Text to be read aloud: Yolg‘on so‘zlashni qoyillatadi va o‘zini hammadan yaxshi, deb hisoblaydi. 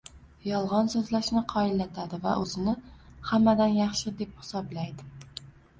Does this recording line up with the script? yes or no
yes